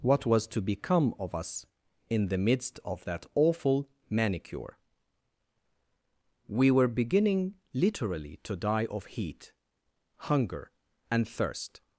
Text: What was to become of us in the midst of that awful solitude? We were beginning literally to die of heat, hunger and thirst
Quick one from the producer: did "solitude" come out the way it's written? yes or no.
no